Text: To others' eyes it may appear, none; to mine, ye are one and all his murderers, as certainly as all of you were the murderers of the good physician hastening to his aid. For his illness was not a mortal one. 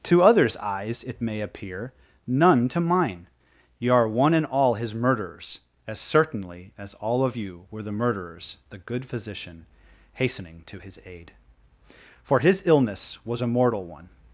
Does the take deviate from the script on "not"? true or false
true